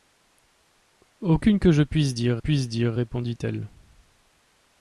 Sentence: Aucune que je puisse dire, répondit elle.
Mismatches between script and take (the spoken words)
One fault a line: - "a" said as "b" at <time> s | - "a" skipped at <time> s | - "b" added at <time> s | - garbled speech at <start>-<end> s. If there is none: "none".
- "puisse dire" added at 2.4 s